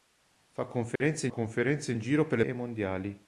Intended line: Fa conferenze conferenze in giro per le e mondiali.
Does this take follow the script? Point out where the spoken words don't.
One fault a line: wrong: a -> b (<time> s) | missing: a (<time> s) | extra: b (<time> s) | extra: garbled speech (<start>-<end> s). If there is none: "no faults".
no faults